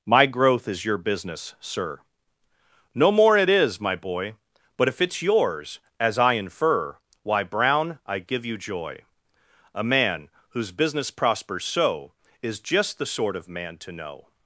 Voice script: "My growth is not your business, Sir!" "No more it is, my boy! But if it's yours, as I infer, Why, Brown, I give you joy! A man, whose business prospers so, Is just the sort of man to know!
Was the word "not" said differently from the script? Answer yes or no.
yes